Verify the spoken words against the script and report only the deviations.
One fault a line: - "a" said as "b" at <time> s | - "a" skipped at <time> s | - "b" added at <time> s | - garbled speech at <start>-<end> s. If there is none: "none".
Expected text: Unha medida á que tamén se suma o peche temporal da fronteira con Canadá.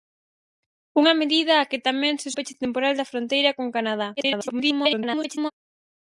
- "suma" skipped at 2.3 s
- garbled speech at 4.2-5.5 s